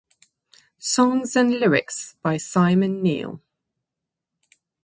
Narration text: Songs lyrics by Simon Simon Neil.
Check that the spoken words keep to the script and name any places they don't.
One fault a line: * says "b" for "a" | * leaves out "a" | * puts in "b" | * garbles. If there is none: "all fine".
* puts in "and"
* leaves out "Simon"